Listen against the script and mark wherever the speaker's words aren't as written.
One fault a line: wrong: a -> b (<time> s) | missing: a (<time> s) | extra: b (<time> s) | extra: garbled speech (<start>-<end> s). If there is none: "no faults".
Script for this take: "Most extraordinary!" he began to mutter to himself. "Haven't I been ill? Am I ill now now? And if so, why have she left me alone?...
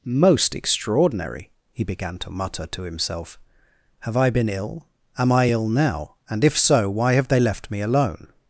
wrong: Haven't -> Have (4.0 s)
missing: now (6.2 s)
wrong: she -> they (7.3 s)